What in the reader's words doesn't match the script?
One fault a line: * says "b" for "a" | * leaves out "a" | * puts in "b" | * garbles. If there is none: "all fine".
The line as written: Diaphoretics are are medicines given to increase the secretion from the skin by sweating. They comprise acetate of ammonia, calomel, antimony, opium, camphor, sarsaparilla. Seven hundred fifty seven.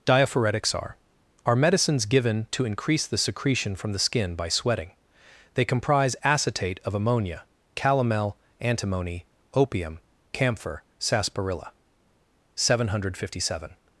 all fine